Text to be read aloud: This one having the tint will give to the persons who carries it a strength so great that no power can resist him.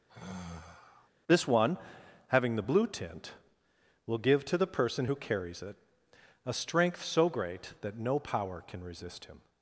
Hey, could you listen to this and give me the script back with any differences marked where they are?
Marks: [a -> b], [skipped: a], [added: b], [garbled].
This one having the [added: blue] tint will give to the [persons -> person] who carries it a strength so great that no power can resist him.